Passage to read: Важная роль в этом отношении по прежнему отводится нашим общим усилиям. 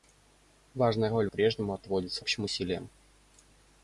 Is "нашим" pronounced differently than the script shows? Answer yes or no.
yes